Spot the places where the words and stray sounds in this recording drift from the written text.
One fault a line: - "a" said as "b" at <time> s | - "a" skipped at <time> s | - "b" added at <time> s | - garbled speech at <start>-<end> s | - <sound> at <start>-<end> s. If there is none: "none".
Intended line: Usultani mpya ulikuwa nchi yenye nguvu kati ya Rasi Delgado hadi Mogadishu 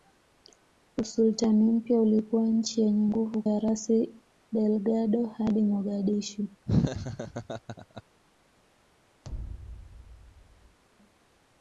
- "kati" skipped at 3.4 s
- laugh at 6.7-8.0 s
- thud at 9.2-10.8 s